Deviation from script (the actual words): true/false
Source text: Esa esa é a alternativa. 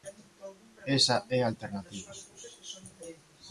true